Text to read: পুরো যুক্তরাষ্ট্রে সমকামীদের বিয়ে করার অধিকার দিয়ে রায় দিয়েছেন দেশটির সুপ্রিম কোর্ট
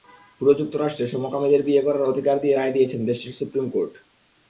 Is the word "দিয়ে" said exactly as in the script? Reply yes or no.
yes